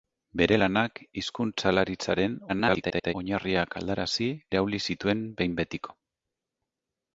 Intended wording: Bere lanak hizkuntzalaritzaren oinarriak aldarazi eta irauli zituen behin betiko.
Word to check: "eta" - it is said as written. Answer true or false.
false